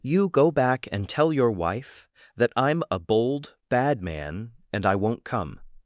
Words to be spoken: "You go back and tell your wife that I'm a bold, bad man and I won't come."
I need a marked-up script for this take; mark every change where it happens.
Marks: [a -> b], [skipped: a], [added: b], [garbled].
"You go back and tell your wife that I'm a bold, bad man and I won't come."